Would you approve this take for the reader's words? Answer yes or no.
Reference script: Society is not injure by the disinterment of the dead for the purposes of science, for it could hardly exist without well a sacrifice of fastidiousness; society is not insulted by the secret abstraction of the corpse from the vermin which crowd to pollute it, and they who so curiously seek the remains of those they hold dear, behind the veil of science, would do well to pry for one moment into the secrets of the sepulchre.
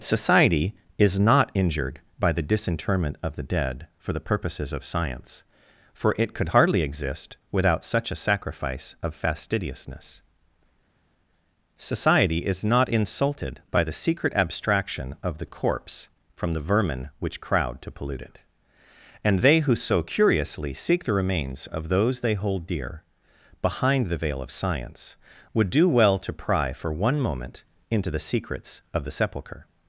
no